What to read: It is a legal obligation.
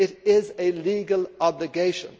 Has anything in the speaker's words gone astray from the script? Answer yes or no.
no